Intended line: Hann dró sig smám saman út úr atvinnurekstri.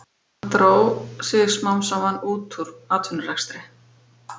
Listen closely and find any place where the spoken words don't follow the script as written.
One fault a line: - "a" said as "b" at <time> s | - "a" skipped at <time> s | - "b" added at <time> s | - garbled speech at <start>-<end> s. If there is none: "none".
none